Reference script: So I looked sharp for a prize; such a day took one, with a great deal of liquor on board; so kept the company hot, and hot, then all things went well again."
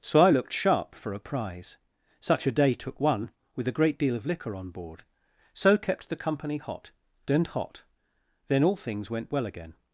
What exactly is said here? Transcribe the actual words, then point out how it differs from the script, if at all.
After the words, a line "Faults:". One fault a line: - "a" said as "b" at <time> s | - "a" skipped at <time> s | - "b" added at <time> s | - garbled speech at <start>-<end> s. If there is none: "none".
So I looked sharp for a prize; such a day took one, with a great deal of liquor on board; so kept the company hot, and hot, then all things went well again."
Faults:
none